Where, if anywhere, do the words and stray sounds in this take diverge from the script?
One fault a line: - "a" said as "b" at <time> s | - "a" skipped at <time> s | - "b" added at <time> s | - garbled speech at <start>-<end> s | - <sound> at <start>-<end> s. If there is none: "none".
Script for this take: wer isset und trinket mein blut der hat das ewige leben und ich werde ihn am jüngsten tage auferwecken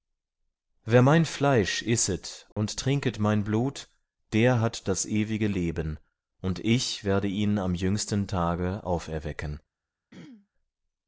- "mein fleisch" added at 1.0 s
- dropout at 2.5-2.6 s
- throat clearing at 10.1-10.5 s